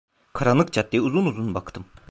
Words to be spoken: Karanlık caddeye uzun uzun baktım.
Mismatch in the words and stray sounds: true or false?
false